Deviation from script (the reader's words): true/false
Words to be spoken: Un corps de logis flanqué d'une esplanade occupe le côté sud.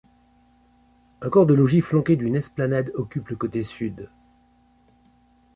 false